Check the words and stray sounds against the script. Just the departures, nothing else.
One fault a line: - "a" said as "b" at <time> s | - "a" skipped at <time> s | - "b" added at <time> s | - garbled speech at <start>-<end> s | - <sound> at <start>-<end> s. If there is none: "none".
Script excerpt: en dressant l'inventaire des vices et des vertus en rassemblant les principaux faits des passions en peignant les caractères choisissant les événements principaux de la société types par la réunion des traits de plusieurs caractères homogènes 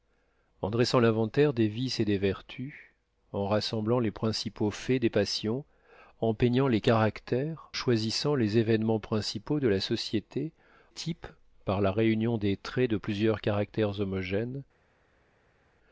none